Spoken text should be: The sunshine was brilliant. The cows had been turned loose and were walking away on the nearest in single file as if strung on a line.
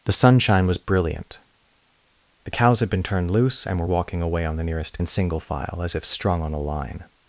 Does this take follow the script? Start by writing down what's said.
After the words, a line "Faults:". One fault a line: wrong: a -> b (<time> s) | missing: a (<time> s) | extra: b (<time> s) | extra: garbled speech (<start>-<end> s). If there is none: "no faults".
The sunshine was brilliant. The cows had been turned loose and were walking away on the nearest in single file as if strung on a line.
Faults:
no faults